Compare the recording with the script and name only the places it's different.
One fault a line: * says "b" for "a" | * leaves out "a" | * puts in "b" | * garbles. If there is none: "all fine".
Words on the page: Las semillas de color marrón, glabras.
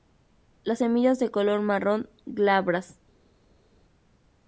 all fine